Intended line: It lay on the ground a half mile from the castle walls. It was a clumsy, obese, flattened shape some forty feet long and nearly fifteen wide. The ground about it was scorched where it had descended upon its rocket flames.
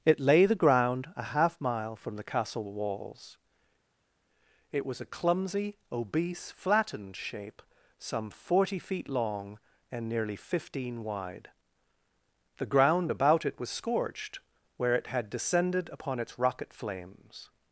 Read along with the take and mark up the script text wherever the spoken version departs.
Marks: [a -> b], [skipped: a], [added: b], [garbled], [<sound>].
It lay [skipped: on] the ground a half mile from the castle walls. It was a clumsy, obese, flattened shape some forty feet long and nearly fifteen wide. The ground about it was scorched where it had descended upon its rocket flames.